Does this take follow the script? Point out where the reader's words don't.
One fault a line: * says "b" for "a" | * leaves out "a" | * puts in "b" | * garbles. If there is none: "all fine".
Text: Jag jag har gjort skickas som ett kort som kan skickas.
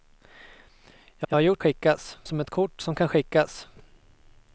all fine